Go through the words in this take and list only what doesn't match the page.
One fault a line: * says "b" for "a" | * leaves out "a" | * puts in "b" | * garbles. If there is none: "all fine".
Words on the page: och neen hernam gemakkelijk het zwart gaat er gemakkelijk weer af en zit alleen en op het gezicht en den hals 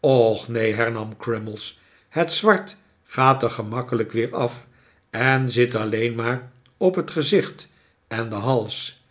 * says "crummies" for "gemakkelijk"
* says "maar" for "en"